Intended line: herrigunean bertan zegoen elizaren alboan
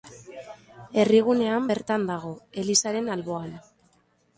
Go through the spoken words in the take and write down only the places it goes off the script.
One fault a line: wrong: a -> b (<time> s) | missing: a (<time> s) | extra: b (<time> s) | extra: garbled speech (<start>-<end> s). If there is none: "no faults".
wrong: zegoen -> dago (2.1 s)